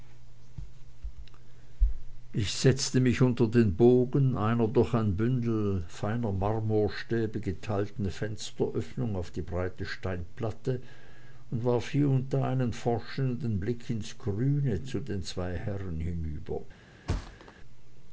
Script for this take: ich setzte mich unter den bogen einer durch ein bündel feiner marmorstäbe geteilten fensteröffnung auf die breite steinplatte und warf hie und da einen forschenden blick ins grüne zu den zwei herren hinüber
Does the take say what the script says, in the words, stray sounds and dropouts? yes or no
no